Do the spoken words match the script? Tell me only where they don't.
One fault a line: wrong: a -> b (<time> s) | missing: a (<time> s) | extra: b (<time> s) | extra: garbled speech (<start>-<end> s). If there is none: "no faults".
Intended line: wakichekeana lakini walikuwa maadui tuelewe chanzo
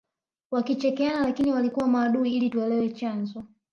extra: ili (2.3 s)